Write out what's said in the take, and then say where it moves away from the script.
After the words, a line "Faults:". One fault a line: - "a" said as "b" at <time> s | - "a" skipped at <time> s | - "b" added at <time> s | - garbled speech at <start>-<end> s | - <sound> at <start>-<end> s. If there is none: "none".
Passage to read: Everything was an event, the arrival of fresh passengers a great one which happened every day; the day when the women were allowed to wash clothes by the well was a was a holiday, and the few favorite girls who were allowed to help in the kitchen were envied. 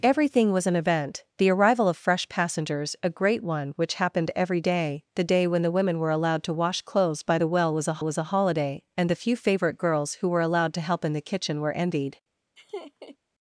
Everything was an event, the arrival of fresh passengers a great one which happened every day; the day when the women were allowed to wash clothes by the well was a was a holiday, and the few favorite girls who were allowed to help in the kitchen were envied.
Faults:
- laugh at 12.6-13.2 s